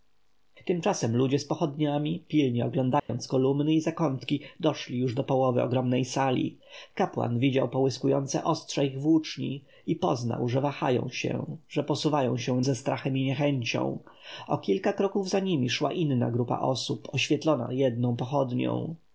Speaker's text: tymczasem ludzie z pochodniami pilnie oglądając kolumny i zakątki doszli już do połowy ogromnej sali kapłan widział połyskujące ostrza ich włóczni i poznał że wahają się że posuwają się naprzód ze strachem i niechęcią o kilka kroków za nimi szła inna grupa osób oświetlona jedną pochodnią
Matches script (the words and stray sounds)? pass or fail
fail